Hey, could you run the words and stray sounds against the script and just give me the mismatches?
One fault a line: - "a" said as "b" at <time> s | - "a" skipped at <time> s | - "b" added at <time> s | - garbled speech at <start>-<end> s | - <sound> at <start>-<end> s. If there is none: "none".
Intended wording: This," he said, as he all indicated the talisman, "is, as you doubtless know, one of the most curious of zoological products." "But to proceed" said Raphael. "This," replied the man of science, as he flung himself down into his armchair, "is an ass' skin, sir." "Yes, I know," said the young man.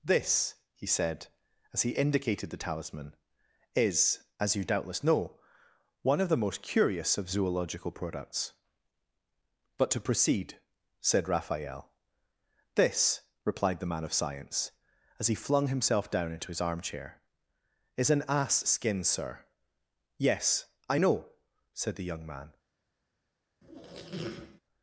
- "all" skipped at 1.9 s
- squeak at 23.6-24.6 s